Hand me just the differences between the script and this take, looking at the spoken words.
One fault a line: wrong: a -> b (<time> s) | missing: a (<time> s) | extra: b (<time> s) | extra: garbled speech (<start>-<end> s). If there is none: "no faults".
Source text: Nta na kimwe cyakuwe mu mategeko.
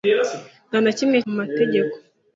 missing: cyakuwe (1.2 s)